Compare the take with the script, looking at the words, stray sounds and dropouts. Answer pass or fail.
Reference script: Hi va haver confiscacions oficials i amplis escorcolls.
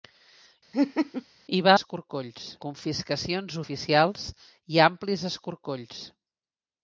fail